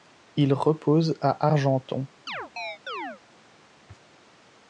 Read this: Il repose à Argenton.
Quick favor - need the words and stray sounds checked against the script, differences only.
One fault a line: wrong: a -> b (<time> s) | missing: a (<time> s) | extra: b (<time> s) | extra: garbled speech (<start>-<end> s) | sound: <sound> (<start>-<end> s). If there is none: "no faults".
sound: chirp (2.3-3.2 s)